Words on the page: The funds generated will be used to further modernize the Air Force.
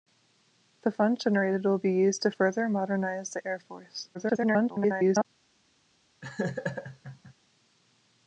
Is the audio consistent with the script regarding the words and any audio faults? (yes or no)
no